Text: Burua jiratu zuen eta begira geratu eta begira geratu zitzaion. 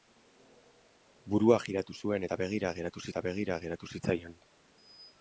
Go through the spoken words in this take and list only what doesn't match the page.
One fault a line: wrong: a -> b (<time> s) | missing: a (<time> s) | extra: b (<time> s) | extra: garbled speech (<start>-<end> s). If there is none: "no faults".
no faults